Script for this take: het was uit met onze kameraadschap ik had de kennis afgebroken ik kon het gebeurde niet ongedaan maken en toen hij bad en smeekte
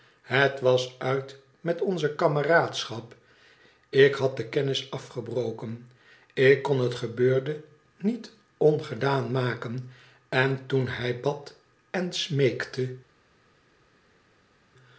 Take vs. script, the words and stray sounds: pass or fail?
pass